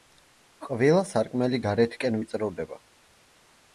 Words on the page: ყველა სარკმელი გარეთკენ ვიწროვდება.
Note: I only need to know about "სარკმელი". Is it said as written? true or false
true